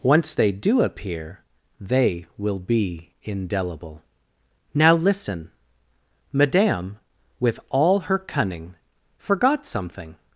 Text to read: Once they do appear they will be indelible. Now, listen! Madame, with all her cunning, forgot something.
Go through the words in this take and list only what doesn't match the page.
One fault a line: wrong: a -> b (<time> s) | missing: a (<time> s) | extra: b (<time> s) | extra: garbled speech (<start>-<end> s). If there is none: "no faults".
no faults